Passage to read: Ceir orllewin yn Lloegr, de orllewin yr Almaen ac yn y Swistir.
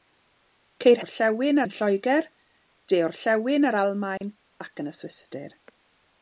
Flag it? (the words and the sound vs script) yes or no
yes